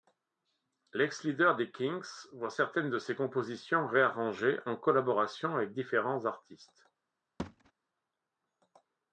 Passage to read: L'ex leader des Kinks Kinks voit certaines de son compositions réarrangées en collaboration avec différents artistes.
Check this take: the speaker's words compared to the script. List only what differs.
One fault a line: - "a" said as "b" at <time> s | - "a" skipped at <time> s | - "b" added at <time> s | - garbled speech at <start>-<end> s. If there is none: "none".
- "Kinks" skipped at 2.3 s
- "son" said as "ses" at 3.0 s